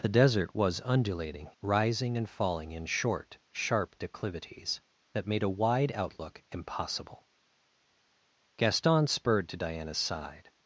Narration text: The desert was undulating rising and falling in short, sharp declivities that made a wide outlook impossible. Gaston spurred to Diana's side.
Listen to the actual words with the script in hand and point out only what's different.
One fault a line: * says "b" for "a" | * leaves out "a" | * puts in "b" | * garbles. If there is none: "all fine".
all fine